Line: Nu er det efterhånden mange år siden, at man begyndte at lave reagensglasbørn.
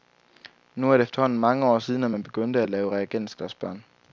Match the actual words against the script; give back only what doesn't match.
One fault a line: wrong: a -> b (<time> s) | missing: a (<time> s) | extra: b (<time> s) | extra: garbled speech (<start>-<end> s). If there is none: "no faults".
no faults